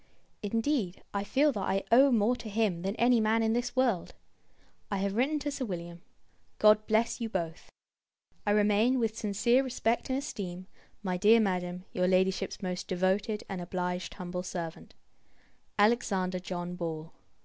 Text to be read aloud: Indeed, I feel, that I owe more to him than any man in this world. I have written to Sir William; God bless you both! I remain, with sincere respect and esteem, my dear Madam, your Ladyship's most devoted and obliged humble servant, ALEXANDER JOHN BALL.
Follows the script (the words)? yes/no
yes